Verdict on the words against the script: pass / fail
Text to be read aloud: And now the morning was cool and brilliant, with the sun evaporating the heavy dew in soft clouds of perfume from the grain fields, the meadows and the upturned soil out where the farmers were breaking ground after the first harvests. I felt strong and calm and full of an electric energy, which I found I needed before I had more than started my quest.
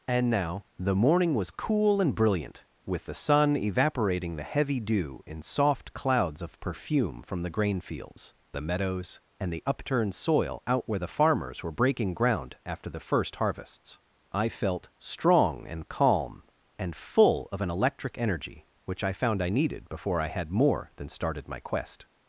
pass